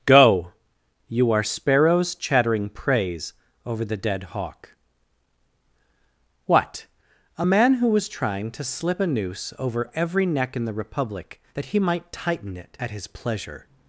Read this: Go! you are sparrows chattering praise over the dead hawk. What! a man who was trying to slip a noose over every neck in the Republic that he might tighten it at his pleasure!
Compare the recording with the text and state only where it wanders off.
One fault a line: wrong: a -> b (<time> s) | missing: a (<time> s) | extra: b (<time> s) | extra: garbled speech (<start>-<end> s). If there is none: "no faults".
no faults